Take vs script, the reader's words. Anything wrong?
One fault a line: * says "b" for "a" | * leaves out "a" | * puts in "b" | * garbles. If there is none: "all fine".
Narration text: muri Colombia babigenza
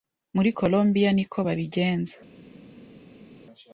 * puts in "niko"